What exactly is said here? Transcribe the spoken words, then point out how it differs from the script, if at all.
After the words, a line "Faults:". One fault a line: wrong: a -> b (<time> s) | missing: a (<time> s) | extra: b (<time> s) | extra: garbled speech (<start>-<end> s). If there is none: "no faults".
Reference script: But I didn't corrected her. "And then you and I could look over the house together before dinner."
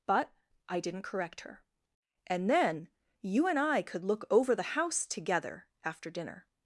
But I didn't correct her. "And then you and I could look over the house together after dinner."
Faults:
wrong: corrected -> correct (1.0 s)
wrong: before -> after (5.8 s)